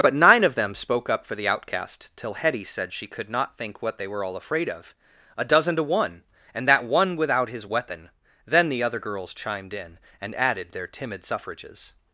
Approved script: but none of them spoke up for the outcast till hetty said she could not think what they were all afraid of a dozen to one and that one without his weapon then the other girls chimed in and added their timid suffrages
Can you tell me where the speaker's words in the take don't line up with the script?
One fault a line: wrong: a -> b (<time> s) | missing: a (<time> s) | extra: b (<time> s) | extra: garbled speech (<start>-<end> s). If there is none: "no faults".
wrong: none -> nine (0.1 s)